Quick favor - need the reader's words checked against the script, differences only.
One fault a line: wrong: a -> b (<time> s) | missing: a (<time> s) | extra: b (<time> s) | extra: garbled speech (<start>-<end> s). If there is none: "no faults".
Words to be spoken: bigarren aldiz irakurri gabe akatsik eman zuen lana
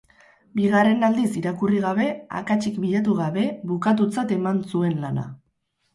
extra: bilatu gabe bukatutzat (2.8 s)